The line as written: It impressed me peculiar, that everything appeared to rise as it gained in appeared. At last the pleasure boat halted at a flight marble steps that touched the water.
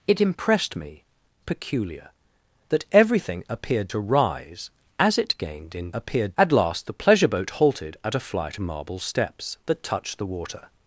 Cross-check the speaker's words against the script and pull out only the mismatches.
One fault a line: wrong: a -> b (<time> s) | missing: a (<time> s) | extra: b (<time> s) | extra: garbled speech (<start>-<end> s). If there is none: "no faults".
no faults